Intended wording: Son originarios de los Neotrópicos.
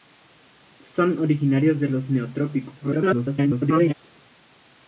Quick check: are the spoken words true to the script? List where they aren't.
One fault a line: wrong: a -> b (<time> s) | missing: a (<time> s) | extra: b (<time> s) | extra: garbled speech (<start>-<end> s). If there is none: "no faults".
extra: garbled speech (2.8-3.9 s)